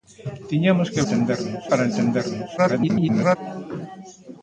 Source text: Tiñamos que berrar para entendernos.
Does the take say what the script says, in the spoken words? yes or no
no